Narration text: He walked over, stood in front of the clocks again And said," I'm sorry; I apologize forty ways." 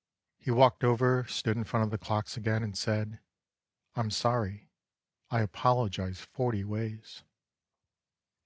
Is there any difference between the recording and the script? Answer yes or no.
no